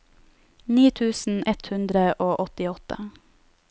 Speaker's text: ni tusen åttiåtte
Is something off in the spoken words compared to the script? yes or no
yes